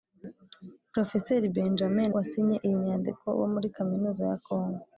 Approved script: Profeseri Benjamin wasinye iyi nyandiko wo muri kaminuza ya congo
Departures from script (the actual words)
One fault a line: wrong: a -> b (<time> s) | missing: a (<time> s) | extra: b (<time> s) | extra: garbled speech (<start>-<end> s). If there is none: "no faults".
no faults